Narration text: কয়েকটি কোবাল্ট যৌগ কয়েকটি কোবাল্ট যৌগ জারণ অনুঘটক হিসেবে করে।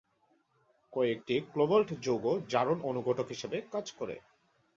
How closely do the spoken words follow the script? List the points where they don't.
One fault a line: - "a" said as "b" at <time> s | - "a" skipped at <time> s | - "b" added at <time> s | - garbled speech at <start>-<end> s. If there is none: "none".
- "কয়েকটি কোবাল্ট যৌগ" skipped at 2.2 s
- "কাজ" added at 3.7 s